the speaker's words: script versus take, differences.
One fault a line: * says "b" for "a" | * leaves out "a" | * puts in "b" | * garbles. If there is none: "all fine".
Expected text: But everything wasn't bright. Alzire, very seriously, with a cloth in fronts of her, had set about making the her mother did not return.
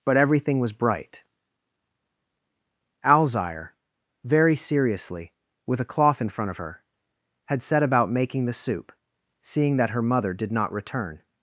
* says "was" for "wasn't"
* says "front" for "fronts"
* puts in "soup seeing that"